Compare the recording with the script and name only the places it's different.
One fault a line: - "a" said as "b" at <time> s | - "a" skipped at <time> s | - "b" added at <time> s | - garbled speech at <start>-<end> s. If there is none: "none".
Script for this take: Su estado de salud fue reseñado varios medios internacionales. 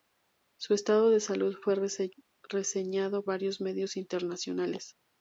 none